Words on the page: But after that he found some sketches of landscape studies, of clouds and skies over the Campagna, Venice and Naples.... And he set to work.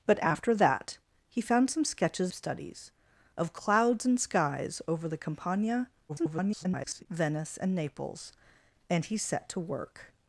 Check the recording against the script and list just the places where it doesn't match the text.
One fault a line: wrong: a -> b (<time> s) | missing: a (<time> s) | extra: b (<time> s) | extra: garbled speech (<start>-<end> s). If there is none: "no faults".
missing: of landscape (2.3 s)
extra: garbled speech (6.1-7.1 s)